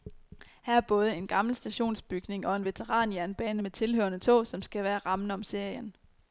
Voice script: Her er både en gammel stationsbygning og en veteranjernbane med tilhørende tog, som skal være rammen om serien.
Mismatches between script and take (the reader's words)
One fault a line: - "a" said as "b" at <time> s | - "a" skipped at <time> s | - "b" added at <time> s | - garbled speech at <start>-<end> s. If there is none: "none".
none